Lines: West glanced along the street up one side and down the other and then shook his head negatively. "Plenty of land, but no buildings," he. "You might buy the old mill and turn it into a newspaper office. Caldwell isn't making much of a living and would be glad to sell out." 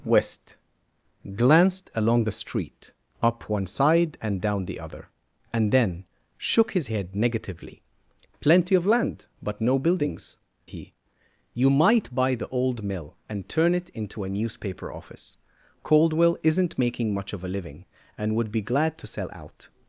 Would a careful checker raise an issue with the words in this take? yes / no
no